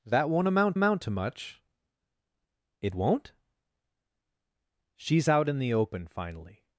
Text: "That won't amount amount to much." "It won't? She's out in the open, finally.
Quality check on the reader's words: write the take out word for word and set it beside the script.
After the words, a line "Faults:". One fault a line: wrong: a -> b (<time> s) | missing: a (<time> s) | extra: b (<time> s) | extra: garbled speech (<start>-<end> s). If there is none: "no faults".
"That won't amount amount to much." "It won't? She's out in the open, finally.
Faults:
no faults